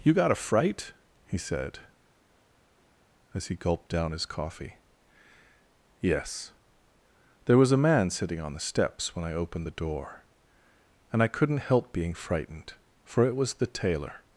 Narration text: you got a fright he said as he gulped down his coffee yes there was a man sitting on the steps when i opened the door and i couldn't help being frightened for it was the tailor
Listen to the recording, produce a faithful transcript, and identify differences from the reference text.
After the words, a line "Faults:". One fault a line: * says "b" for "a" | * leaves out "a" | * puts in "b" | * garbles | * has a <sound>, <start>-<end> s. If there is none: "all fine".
you got a fright he said as he gulped down his coffee yes there was a man sitting on the steps when i opened the door and i couldn't help being frightened for it was the tailor
Faults:
all fine